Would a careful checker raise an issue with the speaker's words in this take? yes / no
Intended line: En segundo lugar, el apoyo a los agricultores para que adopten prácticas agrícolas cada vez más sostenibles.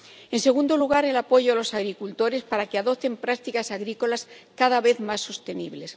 no